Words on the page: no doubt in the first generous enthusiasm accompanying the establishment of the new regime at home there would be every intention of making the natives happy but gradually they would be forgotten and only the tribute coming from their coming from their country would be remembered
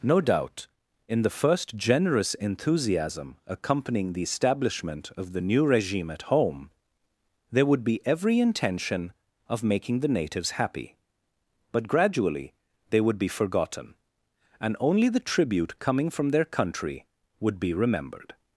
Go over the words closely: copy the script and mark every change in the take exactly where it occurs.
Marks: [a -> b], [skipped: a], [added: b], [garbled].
no doubt in the first generous enthusiasm accompanying the establishment of the new regime at home there would be every intention of making the natives happy but gradually they would be forgotten and only the tribute coming from their [skipped: coming from their] country would be remembered